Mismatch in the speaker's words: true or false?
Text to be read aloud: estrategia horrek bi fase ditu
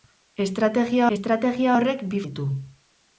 true